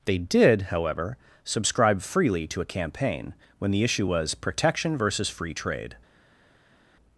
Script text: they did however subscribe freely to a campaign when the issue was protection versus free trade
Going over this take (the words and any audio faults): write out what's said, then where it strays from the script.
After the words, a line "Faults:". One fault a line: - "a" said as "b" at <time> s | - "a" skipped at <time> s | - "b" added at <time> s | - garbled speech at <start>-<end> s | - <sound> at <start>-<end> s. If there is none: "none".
they did however subscribe freely to a campaign when the issue was protection versus free trade
Faults:
none